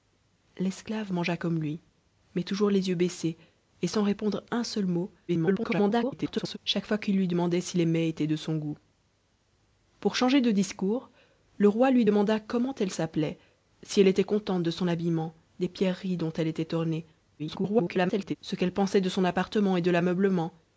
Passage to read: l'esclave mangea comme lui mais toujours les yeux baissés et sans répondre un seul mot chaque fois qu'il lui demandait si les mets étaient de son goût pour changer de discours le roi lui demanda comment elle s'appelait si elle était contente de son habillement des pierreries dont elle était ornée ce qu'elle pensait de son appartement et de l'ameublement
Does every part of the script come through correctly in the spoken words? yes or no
no